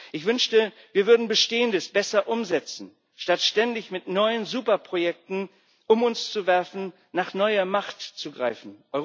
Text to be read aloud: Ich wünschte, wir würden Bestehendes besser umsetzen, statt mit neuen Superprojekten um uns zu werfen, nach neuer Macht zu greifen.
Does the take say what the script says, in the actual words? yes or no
no